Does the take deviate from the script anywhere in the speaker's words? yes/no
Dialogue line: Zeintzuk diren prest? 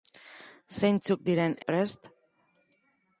no